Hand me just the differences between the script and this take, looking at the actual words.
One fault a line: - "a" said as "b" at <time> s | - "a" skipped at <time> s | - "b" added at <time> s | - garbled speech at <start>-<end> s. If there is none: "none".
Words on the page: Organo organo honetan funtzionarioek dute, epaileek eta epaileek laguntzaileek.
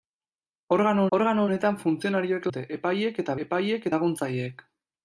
none